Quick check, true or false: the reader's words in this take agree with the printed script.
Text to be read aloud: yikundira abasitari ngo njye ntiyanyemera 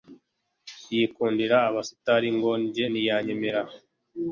true